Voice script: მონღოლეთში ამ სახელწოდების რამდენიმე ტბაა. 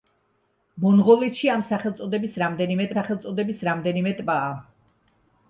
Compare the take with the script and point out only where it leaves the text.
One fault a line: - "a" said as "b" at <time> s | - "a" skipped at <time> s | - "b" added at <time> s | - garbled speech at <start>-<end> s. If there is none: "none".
- "სახელწოდების რამდენიმე" added at 2.9 s